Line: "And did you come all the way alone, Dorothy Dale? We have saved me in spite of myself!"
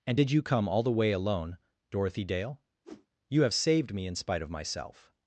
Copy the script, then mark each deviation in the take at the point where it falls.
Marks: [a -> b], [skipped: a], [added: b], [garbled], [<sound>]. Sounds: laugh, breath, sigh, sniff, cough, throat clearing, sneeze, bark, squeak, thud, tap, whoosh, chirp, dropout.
"And did you come all the way alone, Dorothy Dale? [whoosh] [We -> You] have saved me in spite of myself!"